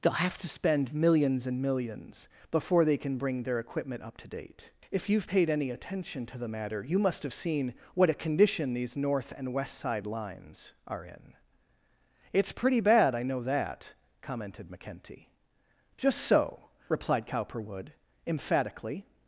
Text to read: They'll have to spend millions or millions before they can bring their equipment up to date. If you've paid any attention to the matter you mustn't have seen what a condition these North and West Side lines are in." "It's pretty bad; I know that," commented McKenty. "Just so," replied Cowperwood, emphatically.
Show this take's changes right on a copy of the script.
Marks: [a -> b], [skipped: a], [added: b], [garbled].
They'll have to spend millions [or -> and] millions before they can bring their equipment up to date. If you've paid any attention to the matter you [mustn't -> must] have seen what a condition these North and West Side lines are in." "It's pretty bad; I know that," commented McKenty. "Just so," replied Cowperwood, emphatically.